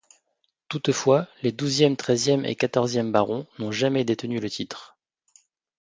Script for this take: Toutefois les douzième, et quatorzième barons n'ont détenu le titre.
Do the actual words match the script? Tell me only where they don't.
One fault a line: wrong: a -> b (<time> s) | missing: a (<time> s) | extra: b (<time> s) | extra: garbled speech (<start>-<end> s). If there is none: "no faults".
extra: treizième (1.9 s)
extra: jamais (3.7 s)